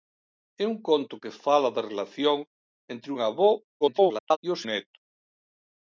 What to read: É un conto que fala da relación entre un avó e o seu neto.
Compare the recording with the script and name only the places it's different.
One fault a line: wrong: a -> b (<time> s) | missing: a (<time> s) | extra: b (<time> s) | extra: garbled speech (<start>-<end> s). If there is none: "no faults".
extra: garbled speech (3.8-4.4 s)
missing: seu (4.6 s)